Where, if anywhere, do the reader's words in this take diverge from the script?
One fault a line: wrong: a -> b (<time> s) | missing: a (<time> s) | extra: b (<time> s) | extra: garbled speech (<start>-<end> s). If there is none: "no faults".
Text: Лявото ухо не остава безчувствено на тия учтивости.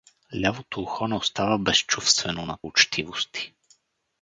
missing: тия (2.6 s)